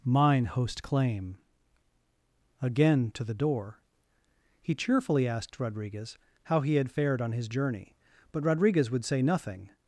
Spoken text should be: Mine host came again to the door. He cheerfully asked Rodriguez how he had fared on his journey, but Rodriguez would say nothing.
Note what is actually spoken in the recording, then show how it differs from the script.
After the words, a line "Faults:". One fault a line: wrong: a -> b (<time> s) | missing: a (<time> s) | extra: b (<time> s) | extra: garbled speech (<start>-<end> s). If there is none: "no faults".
Mine host claim again to the door. He cheerfully asked Rodriguez how he had fared on his journey, but Rodriguez would say nothing.
Faults:
wrong: came -> claim (0.8 s)